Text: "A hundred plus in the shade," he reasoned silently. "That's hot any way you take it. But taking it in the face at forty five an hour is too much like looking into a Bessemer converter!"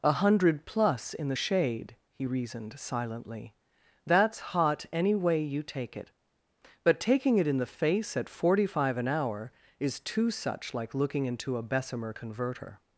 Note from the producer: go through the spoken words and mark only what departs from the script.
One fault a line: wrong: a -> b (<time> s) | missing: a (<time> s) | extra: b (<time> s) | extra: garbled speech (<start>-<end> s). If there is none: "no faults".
wrong: much -> such (10.3 s)